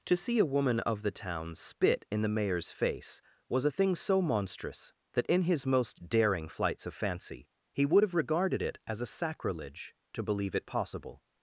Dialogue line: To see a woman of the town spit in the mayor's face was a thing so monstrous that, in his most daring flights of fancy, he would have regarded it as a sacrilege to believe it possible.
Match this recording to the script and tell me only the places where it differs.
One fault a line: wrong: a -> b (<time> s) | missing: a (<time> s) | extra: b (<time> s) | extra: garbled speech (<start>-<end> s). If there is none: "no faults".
no faults